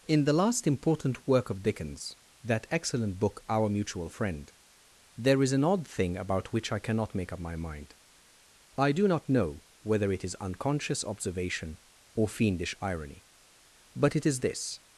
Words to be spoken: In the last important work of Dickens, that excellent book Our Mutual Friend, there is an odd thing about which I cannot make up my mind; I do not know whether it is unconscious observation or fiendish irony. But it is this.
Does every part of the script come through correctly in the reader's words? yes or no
yes